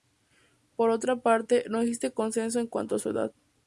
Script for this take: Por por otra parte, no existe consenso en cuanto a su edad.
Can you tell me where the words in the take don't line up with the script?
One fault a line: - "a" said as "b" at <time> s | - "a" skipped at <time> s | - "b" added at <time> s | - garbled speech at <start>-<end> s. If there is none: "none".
- "por" skipped at 0.9 s